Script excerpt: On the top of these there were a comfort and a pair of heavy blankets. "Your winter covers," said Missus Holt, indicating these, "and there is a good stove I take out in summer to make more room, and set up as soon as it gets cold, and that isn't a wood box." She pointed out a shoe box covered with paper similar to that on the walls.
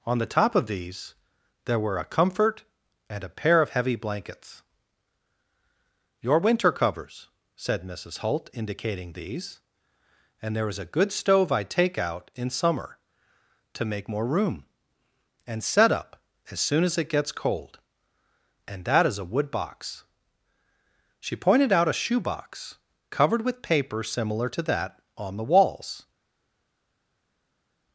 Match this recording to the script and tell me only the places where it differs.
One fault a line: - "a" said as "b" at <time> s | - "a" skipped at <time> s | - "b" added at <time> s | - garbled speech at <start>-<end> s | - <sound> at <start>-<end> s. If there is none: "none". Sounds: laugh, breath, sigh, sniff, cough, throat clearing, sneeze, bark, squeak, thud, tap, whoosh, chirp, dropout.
- "isn't" said as "is" at 19.1 s